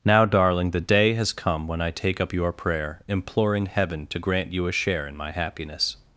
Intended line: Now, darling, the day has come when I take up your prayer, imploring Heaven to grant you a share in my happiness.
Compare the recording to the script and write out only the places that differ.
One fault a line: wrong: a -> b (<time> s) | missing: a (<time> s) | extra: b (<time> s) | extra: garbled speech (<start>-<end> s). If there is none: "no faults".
no faults